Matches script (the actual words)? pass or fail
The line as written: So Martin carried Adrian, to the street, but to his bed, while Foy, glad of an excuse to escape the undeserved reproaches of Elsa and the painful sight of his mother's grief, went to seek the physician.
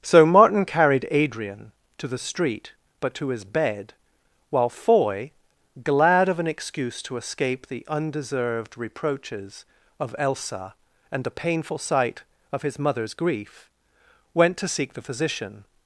pass